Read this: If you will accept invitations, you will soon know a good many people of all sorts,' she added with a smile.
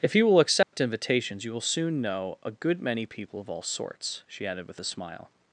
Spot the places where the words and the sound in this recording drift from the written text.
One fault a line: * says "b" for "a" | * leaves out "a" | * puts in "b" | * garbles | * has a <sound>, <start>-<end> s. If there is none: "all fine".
* has a dropout, 0.6-0.7 s